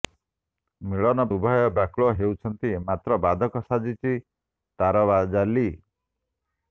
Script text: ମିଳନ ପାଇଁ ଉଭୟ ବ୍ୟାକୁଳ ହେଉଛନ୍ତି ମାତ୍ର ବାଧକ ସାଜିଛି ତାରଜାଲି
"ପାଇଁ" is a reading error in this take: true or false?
true